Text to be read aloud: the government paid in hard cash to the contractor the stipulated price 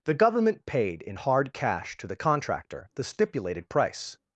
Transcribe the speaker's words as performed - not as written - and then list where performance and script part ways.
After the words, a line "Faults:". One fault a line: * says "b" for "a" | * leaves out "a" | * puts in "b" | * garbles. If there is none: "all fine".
the government paid in hard cash to the contractor the stipulated price
Faults:
all fine